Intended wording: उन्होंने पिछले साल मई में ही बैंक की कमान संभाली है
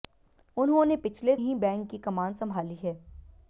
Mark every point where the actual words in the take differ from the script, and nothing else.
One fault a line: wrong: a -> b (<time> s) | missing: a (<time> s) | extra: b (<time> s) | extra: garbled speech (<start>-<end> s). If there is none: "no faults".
missing: साल मई में (1.3 s)